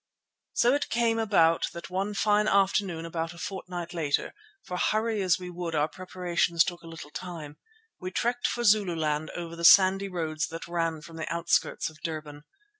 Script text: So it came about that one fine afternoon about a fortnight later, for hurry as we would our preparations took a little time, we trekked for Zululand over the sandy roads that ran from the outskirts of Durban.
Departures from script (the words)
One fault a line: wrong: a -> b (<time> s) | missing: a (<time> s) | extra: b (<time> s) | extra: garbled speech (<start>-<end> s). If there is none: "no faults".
no faults